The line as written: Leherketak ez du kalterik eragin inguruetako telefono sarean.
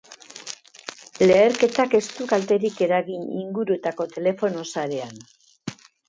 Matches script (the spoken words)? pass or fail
pass